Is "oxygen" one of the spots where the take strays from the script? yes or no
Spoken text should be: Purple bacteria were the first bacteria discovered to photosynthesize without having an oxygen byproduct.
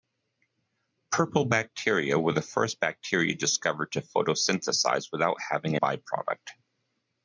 yes